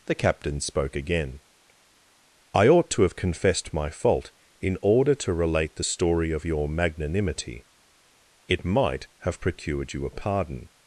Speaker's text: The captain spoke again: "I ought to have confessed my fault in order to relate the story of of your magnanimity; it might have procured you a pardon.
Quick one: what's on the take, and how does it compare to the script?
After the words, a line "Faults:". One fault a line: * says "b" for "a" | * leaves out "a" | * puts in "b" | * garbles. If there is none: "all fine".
The captain spoke again: "I ought to have confessed my fault in order to relate the story of your magnanimity; it might have procured you a pardon.
Faults:
* leaves out "of"